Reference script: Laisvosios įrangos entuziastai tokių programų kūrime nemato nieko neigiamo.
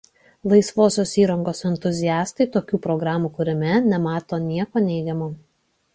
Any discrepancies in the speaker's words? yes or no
no